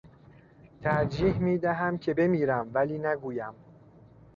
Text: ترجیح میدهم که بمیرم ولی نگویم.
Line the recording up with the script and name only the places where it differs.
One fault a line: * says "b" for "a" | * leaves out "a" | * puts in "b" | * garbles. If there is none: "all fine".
all fine